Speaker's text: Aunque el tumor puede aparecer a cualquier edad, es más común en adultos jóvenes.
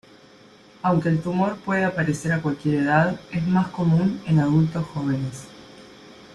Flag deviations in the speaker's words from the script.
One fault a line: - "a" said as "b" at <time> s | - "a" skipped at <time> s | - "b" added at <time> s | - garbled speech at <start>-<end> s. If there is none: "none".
none